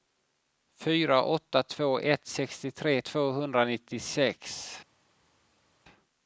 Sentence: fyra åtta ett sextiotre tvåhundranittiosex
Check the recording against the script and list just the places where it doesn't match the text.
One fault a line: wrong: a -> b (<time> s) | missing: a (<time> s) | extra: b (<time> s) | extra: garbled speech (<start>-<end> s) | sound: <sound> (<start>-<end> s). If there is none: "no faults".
extra: två (1.6 s)